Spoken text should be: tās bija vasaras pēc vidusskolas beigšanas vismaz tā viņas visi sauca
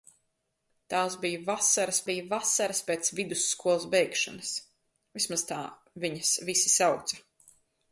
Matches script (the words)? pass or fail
fail